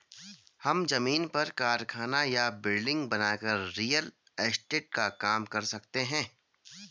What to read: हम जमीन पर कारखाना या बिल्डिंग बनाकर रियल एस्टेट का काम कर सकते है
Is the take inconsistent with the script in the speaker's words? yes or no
no